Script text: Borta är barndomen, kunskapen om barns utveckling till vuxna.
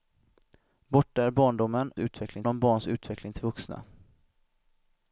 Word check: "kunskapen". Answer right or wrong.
wrong